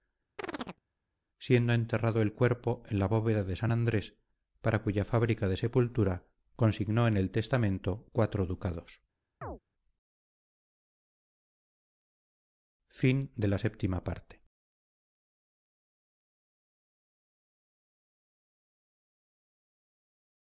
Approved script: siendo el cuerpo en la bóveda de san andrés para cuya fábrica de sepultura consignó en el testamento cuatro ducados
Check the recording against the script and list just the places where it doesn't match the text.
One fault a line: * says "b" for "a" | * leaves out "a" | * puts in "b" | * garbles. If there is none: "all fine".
* puts in "enterrado"